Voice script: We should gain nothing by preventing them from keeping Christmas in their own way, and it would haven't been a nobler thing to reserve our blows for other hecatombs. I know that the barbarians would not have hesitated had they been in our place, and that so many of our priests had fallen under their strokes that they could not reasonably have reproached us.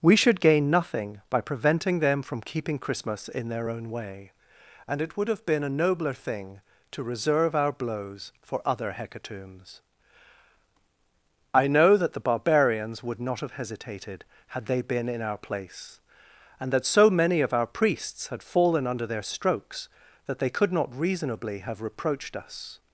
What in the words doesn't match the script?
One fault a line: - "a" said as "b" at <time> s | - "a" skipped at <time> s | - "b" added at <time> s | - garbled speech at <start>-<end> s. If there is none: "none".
- "haven't" said as "have" at 5.3 s